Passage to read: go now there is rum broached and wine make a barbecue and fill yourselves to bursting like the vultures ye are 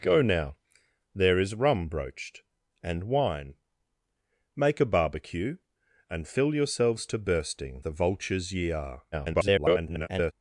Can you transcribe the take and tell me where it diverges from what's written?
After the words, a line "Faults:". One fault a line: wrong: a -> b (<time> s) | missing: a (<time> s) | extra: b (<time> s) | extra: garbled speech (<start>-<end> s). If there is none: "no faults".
go now there is rum broached and wine make a barbecue and fill yourselves to bursting the vultures ye are [garbled]
Faults:
missing: like (7.8 s)
extra: garbled speech (9.1-10.3 s)